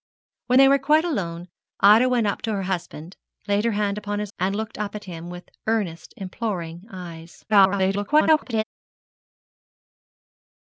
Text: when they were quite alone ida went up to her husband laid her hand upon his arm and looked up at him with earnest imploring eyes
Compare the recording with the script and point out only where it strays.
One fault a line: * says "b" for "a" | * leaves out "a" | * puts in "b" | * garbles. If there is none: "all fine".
* leaves out "arm"
* garbles